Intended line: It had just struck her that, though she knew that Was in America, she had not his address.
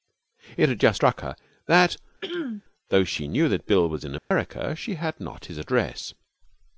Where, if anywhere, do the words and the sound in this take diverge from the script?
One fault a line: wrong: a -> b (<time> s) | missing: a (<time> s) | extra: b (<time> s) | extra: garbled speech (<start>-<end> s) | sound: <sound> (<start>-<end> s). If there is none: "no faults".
sound: throat clearing (2.2-2.6 s)
extra: Bill (3.7 s)
sound: dropout (4.2-4.3 s)